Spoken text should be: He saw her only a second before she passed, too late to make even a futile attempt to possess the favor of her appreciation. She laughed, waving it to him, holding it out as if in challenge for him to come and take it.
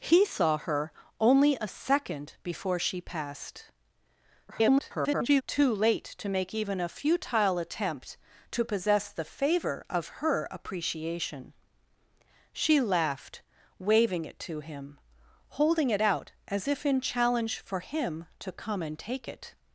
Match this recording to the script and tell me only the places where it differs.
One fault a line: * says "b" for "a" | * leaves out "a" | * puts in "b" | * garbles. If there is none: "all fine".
* garbles